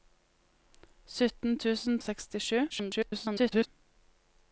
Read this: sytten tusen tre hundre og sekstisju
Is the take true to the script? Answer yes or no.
no